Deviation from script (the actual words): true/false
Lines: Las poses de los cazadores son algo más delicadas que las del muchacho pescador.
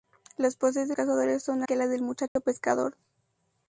true